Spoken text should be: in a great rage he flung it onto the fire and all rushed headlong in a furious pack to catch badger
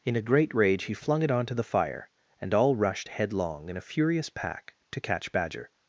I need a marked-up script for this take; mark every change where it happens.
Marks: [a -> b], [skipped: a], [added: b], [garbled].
in a great rage he flung it onto the fire and all rushed headlong in a furious pack to catch badger